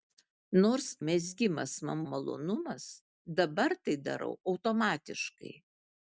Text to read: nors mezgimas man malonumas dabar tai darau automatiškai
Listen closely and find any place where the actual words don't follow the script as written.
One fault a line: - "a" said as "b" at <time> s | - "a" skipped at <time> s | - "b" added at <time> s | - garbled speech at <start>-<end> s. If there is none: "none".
none